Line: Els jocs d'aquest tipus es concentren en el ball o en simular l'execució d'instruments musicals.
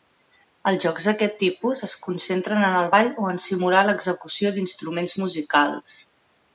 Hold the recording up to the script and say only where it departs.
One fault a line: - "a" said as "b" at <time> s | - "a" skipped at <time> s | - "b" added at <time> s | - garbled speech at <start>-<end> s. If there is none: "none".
none